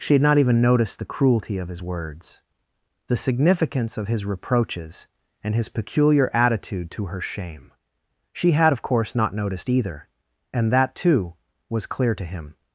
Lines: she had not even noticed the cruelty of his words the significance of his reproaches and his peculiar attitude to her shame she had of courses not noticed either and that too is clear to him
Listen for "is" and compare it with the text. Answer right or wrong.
wrong